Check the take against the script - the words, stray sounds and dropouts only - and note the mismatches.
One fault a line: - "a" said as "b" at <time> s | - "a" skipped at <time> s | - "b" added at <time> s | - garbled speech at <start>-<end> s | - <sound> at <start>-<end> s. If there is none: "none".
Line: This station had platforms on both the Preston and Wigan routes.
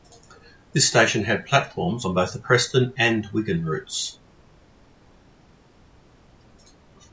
none